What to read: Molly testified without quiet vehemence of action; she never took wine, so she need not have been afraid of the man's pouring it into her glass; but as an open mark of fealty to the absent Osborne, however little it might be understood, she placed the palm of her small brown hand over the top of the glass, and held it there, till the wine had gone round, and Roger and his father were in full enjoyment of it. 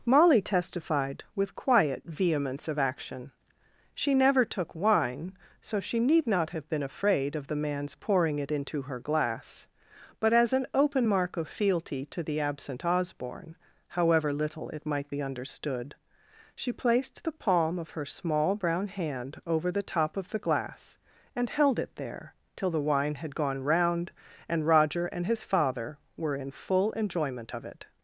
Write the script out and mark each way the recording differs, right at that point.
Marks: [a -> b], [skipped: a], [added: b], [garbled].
Molly testified [without -> with] quiet vehemence of action; she never took wine, so she need not have been afraid of the man's pouring it into her glass; but as an open mark of fealty to the absent Osborne, however little it might be understood, she placed the palm of her small brown hand over the top of the glass, and held it there, till the wine had gone round, and Roger and his father were in full enjoyment of it.